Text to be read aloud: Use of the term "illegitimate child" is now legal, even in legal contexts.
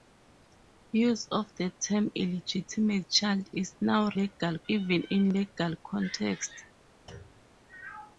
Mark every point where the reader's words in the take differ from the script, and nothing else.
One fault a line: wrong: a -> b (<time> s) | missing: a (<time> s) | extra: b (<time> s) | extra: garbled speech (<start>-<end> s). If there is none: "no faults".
no faults